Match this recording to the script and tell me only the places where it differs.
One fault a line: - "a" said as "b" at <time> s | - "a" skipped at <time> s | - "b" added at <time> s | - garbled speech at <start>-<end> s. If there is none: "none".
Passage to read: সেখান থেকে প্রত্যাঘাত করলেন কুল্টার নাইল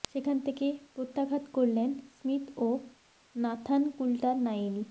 - "স্মিথ ও নাথান" added at 2.2 s